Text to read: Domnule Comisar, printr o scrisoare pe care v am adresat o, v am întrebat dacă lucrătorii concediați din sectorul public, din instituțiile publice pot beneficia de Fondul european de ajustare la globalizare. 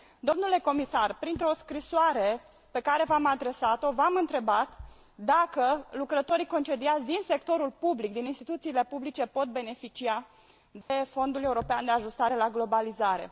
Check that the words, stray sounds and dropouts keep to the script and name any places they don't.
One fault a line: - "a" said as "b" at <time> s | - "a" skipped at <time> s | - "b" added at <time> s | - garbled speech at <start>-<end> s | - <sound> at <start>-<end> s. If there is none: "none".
- dropout at 10.8-10.9 s